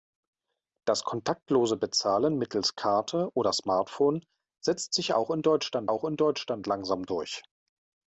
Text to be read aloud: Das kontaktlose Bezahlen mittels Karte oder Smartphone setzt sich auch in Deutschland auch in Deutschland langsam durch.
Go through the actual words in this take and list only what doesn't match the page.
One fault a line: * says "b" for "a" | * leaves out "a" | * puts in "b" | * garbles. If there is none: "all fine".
all fine